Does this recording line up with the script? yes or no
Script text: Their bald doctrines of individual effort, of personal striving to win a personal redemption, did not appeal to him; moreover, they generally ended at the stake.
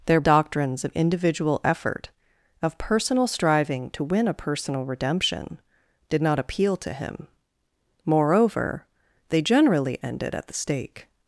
no